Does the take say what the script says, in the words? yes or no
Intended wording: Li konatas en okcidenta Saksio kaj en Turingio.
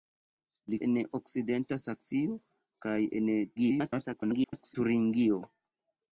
no